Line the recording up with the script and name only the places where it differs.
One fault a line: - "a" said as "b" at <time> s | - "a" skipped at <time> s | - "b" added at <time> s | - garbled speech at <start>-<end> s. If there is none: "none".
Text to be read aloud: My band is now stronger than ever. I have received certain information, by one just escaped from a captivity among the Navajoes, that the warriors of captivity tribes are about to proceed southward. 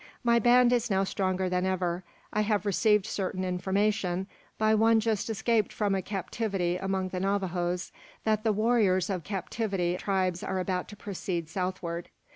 none